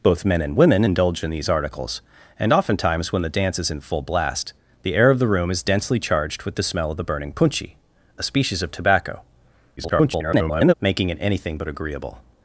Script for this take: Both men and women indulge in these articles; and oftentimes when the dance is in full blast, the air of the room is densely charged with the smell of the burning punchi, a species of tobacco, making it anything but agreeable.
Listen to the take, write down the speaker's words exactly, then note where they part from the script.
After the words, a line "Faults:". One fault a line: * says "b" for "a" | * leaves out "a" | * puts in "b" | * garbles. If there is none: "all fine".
Both men and women indulge in these articles; and oftentimes when the dance is in full blast, the air of the room is densely charged with the smell of the burning punchi, a species of tobacco, [garbled] making it anything but agreeable.
Faults:
* garbles